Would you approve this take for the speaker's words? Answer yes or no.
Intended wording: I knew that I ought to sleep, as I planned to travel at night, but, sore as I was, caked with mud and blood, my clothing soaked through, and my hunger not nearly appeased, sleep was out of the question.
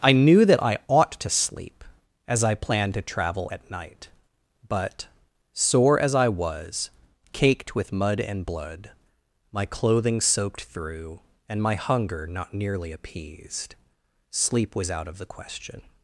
yes